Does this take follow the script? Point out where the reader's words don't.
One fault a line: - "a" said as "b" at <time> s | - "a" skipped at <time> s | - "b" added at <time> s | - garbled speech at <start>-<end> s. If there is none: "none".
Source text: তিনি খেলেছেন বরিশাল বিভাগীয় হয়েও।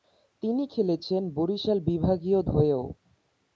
none